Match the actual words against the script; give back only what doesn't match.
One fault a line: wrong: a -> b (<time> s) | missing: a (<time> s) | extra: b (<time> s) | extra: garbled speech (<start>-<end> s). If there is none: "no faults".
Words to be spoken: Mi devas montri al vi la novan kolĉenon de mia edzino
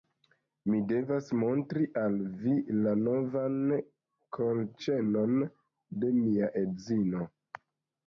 no faults